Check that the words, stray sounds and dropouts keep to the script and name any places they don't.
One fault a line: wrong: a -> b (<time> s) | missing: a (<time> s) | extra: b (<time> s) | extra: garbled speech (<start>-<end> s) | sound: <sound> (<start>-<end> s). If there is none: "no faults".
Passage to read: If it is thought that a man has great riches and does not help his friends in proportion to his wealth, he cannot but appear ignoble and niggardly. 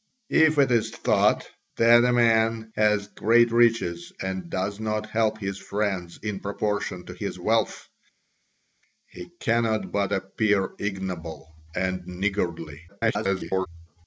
extra: garbled speech (12.9-13.7 s)